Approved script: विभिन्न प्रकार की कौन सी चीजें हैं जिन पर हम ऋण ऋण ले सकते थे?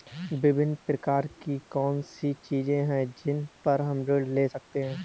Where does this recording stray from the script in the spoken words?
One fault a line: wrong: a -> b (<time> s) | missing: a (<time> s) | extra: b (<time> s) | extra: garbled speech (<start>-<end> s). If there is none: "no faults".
missing: ऋण (4.3 s)
wrong: थे -> हैं (4.8 s)